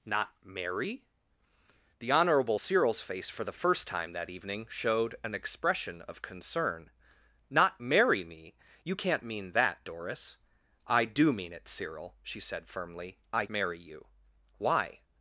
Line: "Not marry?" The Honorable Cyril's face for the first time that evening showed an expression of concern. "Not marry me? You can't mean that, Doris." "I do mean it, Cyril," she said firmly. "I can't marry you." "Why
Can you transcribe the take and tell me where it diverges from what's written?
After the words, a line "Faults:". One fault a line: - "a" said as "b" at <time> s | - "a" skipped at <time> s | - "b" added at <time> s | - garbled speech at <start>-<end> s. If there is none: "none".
"Not marry?" The Honorable Cyril's face for the first time that evening showed an expression of concern. "Not marry me? You can't mean that, Doris." "I do mean it, Cyril," she said firmly. "I marry you." "Why
Faults:
- "can't" skipped at 13.4 s